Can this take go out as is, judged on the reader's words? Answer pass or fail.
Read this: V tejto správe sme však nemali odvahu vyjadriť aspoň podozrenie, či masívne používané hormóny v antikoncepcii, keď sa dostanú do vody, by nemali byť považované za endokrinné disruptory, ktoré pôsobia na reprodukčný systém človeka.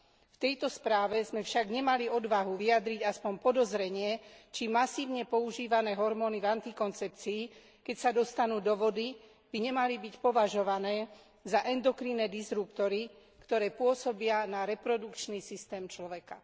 pass